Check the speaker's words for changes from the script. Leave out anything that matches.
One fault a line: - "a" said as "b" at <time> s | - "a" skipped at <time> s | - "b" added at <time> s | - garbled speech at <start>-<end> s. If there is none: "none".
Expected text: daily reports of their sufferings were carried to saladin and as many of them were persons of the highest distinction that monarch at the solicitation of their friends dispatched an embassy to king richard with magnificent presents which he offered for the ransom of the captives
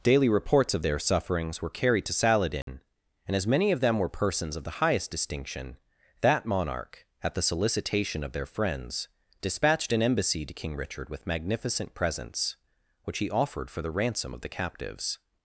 none